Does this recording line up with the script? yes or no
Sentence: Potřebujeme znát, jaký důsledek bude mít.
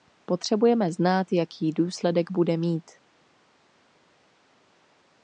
yes